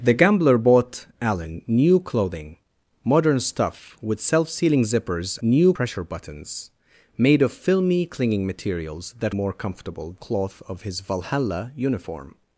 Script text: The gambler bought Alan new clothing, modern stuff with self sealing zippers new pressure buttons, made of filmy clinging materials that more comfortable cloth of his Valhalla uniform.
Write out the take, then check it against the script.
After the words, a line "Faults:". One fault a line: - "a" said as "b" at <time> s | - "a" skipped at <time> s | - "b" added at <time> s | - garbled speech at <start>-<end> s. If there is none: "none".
The gambler bought Alan new clothing, modern stuff with self sealing zippers new pressure buttons, made of filmy clinging materials that more comfortable cloth of his Valhalla uniform.
Faults:
none